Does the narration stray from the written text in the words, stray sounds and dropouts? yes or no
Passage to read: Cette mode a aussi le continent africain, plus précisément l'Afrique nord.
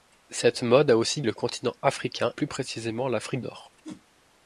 yes